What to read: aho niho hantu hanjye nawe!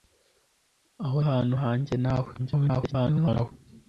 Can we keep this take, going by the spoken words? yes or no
no